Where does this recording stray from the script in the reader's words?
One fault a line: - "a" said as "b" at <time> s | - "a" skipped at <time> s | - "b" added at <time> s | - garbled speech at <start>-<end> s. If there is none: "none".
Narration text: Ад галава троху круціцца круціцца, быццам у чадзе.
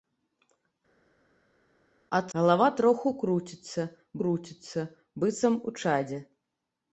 none